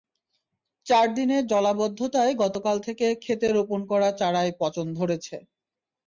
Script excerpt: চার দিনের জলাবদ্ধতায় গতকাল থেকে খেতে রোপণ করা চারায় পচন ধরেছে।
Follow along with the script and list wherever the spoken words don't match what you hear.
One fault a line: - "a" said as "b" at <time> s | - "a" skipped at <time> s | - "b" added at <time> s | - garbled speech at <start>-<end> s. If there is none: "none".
none